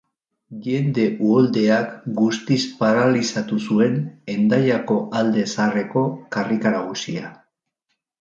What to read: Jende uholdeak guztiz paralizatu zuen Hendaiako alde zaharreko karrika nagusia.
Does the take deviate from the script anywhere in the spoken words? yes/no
no